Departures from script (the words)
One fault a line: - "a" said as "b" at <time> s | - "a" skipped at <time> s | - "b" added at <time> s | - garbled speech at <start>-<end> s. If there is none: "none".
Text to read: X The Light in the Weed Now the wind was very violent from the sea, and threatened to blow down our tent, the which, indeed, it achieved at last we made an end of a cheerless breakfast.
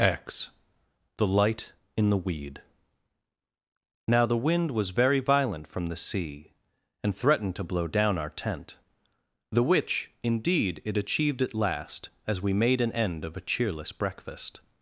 - "as" added at 12.3 s